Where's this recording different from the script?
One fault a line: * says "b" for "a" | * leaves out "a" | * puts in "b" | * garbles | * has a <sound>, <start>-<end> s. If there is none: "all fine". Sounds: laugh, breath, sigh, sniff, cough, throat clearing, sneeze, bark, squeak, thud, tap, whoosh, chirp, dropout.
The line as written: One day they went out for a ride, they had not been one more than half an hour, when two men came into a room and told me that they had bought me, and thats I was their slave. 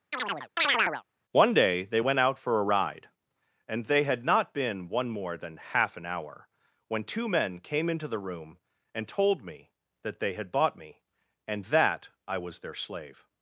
* has a chirp, 0.1-1.0 s
* puts in "and"
* says "the" for "a"
* says "that" for "thats"